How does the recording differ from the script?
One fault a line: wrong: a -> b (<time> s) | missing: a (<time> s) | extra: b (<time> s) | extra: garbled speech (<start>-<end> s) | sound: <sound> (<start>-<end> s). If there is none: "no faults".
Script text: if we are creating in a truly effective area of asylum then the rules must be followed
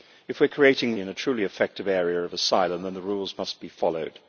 no faults